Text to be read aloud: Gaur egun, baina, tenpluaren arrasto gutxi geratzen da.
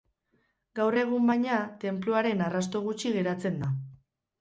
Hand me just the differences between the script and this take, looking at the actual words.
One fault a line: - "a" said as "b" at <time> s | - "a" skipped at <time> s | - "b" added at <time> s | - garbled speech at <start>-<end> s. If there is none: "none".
none